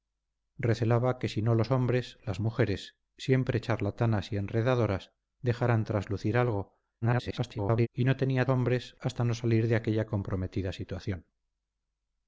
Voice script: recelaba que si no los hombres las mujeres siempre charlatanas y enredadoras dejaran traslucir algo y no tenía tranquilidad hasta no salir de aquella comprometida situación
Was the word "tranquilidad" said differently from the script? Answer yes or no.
yes